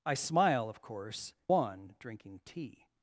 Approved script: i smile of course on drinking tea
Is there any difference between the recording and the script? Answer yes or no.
no